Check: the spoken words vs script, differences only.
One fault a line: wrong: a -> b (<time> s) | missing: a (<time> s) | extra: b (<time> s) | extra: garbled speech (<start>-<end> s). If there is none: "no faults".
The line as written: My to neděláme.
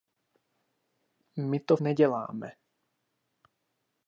no faults